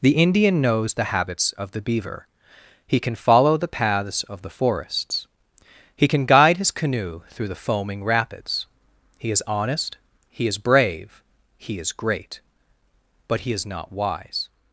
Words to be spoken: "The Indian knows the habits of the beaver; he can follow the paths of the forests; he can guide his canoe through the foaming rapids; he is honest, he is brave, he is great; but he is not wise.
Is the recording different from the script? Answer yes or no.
no